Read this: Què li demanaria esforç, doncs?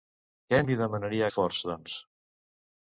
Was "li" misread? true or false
false